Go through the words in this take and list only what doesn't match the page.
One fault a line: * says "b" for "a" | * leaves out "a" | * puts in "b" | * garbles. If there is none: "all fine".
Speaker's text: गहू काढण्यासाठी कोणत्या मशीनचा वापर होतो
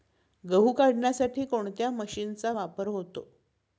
all fine